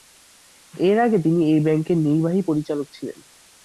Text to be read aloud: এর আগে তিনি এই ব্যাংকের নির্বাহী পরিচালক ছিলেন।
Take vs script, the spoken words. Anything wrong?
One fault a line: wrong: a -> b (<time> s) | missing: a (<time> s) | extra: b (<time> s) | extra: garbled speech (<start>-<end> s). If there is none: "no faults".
no faults